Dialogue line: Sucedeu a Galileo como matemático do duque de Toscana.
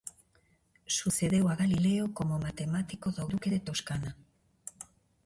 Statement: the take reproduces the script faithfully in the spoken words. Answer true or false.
true